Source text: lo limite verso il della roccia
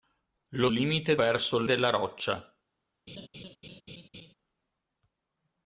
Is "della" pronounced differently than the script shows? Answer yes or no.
no